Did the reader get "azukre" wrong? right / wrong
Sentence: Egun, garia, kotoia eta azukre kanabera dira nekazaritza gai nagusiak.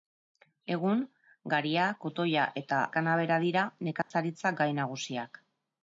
wrong